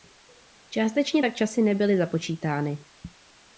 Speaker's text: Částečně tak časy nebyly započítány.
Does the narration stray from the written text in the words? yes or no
no